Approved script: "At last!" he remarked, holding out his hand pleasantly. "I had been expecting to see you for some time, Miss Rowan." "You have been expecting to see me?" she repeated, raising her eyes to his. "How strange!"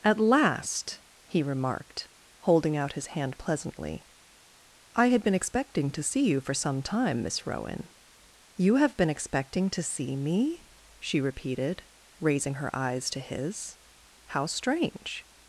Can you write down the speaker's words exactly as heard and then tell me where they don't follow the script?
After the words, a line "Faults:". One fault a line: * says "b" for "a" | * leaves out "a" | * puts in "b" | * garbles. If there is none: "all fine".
"At last!" he remarked, holding out his hand pleasantly. "I had been expecting to see you for some time, Miss Rowan." "You have been expecting to see me?" she repeated, raising her eyes to his. "How strange!"
Faults:
all fine